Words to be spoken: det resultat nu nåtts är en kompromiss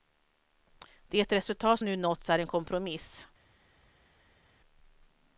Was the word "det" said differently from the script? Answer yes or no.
no